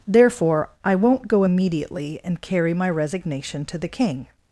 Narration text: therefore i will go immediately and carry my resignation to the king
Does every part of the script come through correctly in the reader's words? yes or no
no